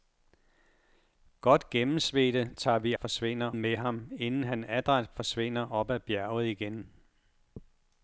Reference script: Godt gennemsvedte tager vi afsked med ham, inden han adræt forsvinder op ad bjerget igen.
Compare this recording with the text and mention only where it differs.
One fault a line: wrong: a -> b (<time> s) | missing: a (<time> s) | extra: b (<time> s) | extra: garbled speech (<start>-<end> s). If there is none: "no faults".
wrong: afsked -> forsvinder (3.0 s)